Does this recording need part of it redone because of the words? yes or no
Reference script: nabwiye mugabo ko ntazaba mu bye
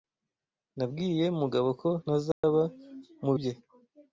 no